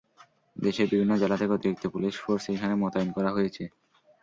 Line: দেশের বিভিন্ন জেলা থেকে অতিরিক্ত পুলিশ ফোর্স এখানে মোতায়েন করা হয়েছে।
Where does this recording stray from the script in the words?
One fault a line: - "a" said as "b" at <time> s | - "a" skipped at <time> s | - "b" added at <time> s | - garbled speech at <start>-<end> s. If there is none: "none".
none